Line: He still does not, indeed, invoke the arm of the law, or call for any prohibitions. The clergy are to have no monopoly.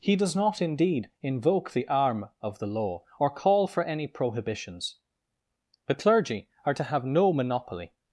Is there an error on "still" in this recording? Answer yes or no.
yes